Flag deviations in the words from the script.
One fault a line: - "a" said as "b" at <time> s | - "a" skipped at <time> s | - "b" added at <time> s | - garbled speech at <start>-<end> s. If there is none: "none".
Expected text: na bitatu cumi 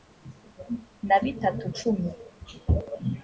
none